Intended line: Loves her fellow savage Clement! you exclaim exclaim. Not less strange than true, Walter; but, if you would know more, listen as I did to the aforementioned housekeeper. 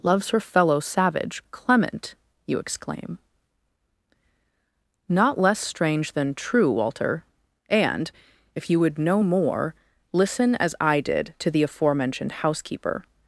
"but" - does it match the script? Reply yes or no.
no